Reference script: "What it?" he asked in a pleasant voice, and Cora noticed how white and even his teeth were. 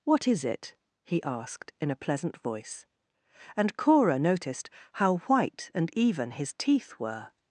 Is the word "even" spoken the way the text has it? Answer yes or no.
yes